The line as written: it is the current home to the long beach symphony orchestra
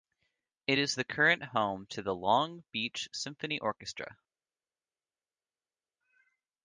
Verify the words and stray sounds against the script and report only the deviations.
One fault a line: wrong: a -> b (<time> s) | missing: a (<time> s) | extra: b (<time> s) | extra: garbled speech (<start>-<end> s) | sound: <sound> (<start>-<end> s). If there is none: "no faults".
no faults